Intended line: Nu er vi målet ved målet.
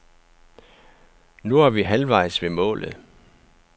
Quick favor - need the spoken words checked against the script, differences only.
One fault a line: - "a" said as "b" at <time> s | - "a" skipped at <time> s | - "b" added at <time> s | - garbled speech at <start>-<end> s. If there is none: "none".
- "målet" said as "halvvejs" at 1.8 s